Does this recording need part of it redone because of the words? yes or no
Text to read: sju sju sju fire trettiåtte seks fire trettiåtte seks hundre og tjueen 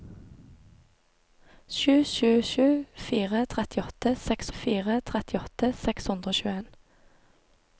no